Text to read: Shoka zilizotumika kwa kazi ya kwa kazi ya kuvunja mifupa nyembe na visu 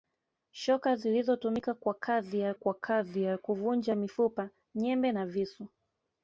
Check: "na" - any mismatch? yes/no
no